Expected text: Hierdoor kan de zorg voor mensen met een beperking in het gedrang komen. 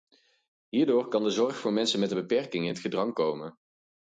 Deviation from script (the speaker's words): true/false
false